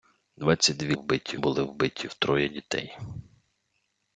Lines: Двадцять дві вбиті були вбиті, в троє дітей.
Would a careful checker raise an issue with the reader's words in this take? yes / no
no